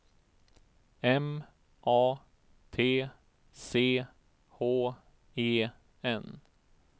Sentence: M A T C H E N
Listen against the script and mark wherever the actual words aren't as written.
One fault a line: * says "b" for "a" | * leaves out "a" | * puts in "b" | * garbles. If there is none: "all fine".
all fine